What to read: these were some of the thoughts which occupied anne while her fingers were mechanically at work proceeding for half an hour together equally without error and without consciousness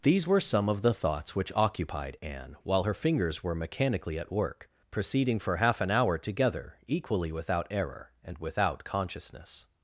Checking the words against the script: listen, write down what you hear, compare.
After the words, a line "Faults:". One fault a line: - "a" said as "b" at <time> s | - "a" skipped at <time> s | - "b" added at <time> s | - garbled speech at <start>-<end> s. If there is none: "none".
these were some of the thoughts which occupied anne while her fingers were mechanically at work proceeding for half an hour together equally without error and without consciousness
Faults:
none